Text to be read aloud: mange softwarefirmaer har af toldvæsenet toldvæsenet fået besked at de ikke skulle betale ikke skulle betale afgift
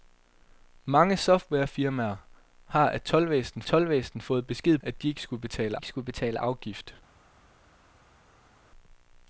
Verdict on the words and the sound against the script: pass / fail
pass